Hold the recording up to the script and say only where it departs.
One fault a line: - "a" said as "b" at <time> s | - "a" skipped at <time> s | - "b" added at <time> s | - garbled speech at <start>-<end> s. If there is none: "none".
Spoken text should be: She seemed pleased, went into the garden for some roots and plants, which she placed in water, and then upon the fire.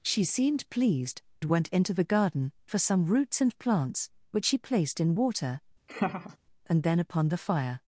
none